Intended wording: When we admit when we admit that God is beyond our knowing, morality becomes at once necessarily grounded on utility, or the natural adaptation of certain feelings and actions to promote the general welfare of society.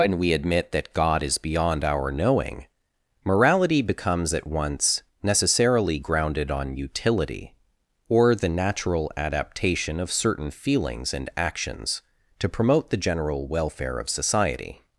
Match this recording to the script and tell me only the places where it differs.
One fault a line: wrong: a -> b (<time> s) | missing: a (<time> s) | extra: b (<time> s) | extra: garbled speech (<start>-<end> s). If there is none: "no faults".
missing: when we admit (0.7 s)